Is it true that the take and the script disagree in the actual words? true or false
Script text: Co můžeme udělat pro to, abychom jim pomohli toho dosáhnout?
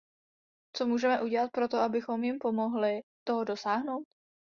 false